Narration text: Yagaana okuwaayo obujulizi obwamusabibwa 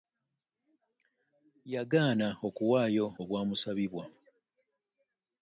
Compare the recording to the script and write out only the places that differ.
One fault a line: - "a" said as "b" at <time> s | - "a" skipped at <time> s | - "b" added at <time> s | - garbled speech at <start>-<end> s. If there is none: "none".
- "obujulizi" skipped at 3.0 s